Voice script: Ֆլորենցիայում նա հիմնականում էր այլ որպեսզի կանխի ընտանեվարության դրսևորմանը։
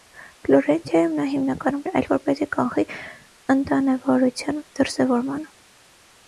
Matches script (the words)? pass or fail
pass